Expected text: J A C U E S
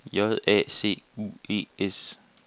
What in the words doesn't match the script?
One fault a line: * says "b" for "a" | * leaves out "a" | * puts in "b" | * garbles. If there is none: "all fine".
all fine